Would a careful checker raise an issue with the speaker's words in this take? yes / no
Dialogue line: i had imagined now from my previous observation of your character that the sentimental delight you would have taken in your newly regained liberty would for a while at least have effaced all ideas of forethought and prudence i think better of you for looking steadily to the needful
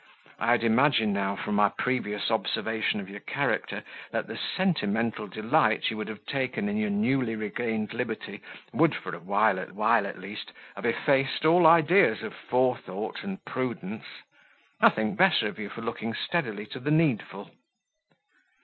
yes